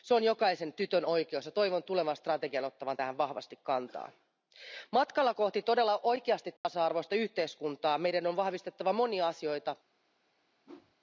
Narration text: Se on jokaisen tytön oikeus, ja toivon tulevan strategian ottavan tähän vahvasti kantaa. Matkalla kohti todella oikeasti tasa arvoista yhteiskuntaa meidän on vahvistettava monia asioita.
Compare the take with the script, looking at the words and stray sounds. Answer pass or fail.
fail